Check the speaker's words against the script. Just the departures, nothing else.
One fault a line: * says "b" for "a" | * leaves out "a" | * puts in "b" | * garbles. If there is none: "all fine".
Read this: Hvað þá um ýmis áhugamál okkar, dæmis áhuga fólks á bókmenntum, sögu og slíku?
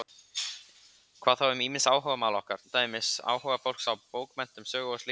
all fine